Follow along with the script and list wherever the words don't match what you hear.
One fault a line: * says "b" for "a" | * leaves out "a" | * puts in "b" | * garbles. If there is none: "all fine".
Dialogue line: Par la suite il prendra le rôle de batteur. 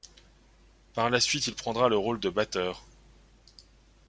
all fine